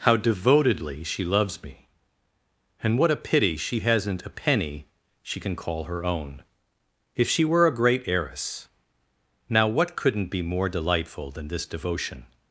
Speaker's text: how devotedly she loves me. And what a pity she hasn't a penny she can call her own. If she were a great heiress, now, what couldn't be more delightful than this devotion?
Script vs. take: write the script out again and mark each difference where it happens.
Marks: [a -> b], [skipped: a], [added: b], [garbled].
how devotedly she loves me. And what a pity she hasn't a penny she can call her own. If she were a great heiress, now, what couldn't be more delightful than this devotion?